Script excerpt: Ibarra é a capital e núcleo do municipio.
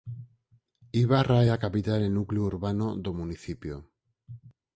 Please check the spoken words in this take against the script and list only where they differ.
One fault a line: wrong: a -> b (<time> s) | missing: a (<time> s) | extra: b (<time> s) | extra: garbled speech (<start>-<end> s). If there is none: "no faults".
extra: urbano (2.5 s)